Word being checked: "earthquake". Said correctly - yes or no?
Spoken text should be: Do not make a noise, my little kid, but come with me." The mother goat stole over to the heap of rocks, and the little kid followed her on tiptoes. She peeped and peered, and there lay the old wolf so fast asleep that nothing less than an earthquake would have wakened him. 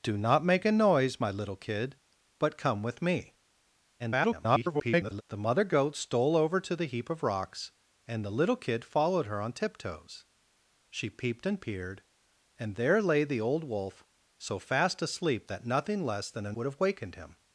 no